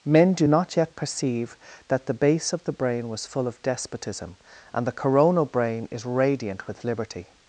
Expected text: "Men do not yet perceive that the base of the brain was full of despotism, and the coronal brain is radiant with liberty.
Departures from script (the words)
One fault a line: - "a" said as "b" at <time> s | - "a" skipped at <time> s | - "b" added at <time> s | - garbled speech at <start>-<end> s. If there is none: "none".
none